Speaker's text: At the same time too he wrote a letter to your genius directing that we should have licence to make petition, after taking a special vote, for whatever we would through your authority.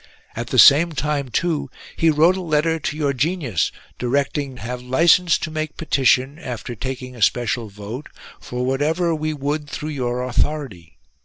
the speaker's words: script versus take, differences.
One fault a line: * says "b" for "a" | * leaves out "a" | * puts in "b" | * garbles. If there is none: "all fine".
* leaves out "that we should"